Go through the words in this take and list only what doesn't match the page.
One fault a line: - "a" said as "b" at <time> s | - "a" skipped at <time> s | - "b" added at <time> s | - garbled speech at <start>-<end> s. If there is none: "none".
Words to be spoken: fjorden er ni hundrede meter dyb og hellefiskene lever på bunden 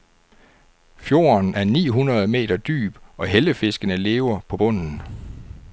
none